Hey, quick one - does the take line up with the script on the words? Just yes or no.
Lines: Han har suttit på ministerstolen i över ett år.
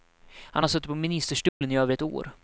yes